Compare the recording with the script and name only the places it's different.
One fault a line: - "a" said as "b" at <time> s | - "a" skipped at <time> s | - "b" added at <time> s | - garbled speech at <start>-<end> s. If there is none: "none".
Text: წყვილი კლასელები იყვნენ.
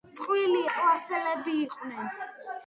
none